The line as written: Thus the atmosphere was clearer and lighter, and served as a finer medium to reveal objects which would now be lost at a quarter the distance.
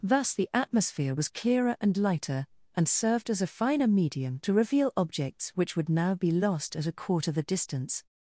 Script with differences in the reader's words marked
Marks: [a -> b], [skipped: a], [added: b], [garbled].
Thus the atmosphere was clearer and lighter, and served as a finer medium to reveal objects which would now be lost at a quarter the distance.